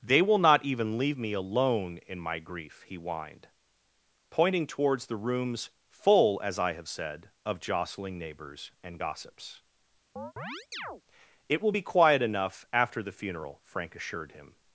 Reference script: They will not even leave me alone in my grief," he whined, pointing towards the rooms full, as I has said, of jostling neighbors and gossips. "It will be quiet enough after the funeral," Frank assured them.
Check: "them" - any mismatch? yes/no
yes